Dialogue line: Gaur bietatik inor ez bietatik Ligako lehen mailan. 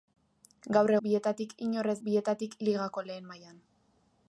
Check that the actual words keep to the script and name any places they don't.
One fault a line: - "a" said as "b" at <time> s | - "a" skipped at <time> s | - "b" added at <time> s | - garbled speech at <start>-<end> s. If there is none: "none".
none